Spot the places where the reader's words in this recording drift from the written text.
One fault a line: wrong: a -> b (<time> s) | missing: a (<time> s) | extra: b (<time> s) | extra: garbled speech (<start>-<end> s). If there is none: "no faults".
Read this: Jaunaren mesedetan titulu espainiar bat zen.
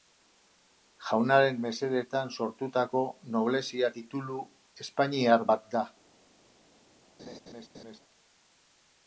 extra: sortutako noblezia (2.4 s)
wrong: zen -> da (5.8 s)